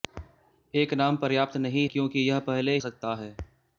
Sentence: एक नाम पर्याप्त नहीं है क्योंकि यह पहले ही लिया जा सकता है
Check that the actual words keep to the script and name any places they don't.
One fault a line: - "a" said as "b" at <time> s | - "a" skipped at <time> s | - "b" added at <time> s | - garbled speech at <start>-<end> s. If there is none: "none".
- "है" skipped at 1.9 s
- "ही लिया जा" skipped at 2.8 s